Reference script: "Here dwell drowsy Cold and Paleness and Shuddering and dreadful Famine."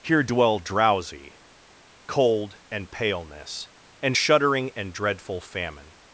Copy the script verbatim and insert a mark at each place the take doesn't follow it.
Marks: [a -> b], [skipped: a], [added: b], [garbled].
"Here dwell drowsy Cold and Paleness and Shuddering and dreadful Famine."